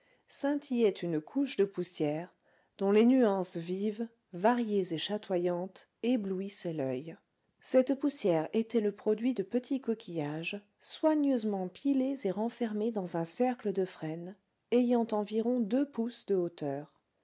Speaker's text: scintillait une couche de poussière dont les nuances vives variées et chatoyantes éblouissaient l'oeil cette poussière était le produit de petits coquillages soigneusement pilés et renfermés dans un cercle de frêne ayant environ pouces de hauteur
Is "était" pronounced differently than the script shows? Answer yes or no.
no